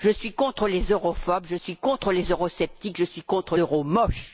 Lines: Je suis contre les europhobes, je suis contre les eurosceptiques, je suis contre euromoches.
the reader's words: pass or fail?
pass